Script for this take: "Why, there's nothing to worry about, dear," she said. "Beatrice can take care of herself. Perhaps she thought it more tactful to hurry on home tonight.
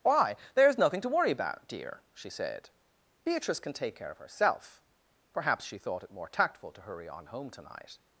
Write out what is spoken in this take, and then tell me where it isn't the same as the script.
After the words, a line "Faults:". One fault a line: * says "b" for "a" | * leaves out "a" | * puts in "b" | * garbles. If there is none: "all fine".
"Why, there's nothing to worry about, dear," she said. "Beatrice can take care of herself. Perhaps she thought it more tactful to hurry on home tonight.
Faults:
all fine